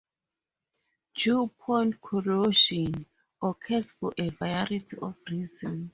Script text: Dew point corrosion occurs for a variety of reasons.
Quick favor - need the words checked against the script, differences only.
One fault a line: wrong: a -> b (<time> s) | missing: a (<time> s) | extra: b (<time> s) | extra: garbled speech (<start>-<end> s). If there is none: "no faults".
no faults